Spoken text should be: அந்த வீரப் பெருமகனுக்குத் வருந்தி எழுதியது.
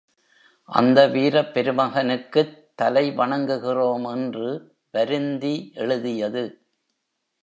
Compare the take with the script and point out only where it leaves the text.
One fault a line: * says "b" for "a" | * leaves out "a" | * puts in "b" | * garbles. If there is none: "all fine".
* puts in "தலை வணங்குகிறோம் என்று"